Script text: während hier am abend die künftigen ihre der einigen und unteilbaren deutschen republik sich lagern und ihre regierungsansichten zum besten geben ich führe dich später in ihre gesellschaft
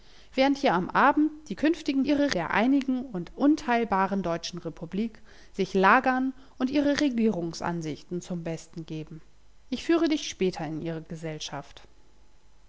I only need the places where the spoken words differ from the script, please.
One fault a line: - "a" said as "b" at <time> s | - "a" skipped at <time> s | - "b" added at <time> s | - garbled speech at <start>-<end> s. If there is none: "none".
none